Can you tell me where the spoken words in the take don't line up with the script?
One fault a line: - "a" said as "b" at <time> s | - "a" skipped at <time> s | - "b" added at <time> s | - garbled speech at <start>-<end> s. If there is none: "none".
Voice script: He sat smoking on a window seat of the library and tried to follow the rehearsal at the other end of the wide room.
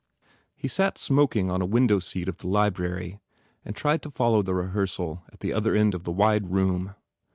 none